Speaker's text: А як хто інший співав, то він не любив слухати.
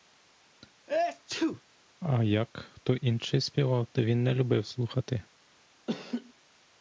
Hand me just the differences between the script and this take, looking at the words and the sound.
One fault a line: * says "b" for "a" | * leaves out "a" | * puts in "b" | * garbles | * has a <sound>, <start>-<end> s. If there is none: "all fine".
* has a sneeze, 0.9-1.6 s
* has a laugh, 5.9-6.3 s